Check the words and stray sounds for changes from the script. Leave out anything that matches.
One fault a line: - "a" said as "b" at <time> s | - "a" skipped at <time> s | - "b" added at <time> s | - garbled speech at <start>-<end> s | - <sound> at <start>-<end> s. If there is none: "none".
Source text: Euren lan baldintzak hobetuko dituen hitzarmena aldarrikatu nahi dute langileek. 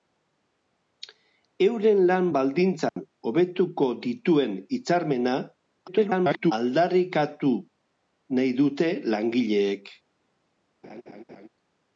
- dropout at 2.9-3.0 s
- garbled speech at 5.9-6.5 s
- laugh at 10.8-11.5 s